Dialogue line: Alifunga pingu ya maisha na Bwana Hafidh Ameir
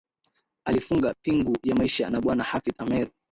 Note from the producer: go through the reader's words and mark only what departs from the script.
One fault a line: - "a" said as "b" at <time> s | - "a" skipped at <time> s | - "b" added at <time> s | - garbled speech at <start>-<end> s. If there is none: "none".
none